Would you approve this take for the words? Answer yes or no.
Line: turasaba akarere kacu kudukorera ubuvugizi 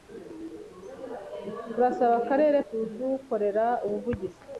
no